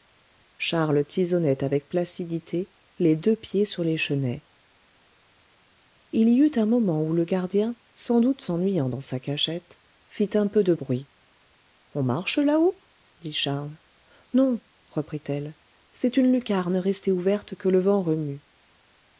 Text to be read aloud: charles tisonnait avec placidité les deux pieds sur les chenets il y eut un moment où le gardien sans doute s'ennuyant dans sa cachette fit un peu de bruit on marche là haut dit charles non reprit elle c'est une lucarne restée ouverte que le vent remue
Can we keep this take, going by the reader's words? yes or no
yes